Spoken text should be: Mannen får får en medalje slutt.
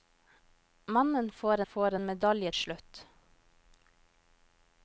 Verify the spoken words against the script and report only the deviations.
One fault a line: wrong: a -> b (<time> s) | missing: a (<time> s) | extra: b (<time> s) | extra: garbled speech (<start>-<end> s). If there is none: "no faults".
no faults